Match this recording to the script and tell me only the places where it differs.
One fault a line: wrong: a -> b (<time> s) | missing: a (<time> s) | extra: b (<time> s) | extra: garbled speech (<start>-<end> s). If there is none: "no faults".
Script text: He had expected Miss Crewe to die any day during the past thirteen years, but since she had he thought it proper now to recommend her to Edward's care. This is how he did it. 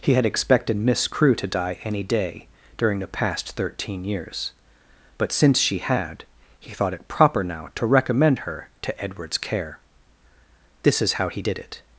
no faults